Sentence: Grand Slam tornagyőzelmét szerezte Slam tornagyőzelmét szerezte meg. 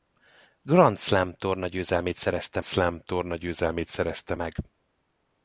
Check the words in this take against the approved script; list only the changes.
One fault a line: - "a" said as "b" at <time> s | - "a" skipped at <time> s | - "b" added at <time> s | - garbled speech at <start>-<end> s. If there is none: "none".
none